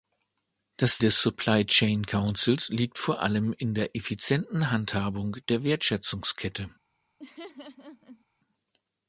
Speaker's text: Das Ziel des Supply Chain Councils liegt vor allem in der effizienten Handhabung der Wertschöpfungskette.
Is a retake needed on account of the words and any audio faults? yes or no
yes